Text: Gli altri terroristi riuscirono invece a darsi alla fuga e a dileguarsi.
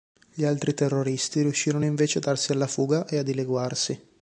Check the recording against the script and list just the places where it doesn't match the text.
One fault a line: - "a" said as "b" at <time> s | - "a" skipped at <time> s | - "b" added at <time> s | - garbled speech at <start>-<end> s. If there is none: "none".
none